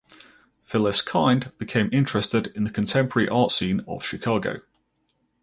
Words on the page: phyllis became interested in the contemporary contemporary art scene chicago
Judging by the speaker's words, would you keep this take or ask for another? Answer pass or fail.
fail